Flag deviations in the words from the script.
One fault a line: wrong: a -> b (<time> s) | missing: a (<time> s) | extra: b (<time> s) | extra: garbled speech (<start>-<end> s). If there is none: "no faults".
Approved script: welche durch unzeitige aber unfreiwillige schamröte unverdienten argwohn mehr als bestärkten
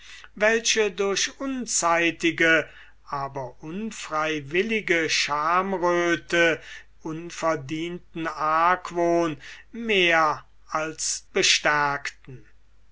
no faults